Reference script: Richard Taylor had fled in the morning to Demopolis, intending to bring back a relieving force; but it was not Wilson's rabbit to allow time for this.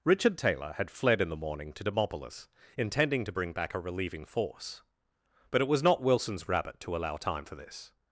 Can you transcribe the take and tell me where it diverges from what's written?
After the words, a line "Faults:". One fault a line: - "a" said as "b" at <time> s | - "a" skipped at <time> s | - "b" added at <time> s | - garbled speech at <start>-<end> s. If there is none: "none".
Richard Taylor had fled in the morning to Demopolis, intending to bring back a relieving force; but it was not Wilson's rabbit to allow time for this.
Faults:
none